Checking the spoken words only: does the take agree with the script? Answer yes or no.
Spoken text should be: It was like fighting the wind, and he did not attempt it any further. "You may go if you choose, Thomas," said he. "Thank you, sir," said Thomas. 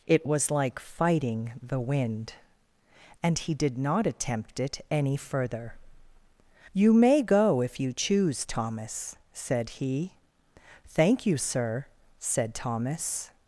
yes